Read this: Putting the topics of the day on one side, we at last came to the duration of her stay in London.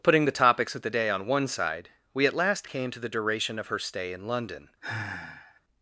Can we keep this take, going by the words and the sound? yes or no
no